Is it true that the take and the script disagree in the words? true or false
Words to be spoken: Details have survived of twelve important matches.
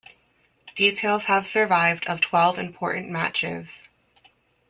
false